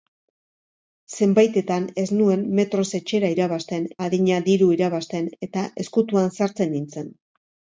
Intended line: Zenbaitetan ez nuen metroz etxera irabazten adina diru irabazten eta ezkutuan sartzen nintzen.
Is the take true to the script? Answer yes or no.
yes